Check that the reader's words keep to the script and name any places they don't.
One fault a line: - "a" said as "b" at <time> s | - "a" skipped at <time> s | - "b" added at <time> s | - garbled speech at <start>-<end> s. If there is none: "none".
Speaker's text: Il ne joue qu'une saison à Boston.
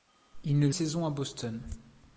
- "joue qu'une" skipped at 0.7 s